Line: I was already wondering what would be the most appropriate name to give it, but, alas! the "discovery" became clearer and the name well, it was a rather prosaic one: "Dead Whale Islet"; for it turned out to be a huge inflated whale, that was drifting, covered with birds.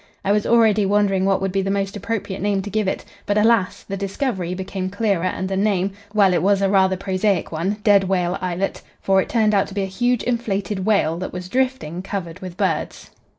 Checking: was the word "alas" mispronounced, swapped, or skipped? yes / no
no